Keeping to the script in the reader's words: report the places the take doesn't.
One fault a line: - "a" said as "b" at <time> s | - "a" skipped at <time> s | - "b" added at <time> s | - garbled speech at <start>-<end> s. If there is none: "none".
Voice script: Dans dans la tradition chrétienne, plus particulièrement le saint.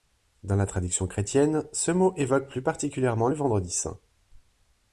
- "dans" skipped at 0.6 s
- "ce mot évoque" added at 1.7 s
- "vendredi" added at 3.3 s